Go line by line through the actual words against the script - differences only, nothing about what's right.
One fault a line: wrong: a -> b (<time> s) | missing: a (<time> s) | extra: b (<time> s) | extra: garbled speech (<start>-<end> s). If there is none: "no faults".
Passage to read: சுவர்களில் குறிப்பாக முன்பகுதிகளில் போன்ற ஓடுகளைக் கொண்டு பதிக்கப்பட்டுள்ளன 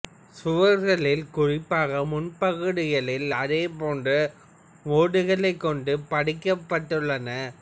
extra: அதே (3.4 s)